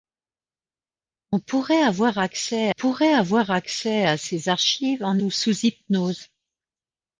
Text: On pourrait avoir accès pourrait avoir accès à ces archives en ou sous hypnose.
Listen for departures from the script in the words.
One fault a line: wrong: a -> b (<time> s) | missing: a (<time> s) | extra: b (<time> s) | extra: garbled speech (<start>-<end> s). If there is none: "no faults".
no faults